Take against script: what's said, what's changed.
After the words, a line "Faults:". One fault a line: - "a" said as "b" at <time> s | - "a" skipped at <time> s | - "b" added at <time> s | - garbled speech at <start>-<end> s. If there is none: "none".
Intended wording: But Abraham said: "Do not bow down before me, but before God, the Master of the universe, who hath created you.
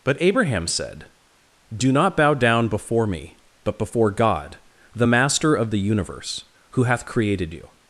But Abraham said: "Do not bow down before me, but before God, the Master of the universe, who hath created you.
Faults:
none